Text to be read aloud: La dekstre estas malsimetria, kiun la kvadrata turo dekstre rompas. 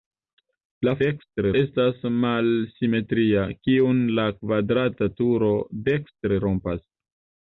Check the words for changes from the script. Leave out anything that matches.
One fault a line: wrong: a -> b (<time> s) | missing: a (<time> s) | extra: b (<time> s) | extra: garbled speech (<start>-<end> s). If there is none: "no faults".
no faults